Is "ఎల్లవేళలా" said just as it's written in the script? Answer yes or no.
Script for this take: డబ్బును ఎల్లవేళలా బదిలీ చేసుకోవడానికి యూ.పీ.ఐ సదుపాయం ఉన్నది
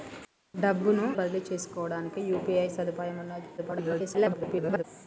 no